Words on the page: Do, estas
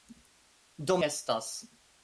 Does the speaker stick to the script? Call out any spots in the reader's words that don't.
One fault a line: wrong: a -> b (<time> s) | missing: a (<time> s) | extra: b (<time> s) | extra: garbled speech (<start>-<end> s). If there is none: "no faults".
no faults